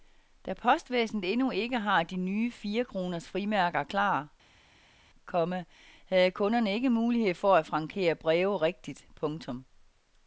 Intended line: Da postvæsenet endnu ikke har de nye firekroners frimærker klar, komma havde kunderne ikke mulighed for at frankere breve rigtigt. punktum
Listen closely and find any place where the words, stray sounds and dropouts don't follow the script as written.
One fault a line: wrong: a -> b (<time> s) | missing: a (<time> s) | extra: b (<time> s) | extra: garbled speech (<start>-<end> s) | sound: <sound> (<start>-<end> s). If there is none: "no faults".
no faults